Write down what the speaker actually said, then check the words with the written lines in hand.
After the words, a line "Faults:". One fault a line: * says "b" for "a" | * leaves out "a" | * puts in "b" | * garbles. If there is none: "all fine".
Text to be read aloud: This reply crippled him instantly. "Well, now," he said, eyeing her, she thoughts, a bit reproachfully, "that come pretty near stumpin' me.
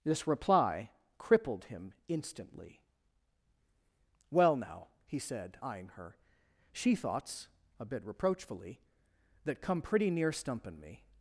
This reply crippled him instantly. "Well, now," he said, eyeing her, she thoughts, a bit reproachfully, "that come pretty near stumpin' me.
Faults:
all fine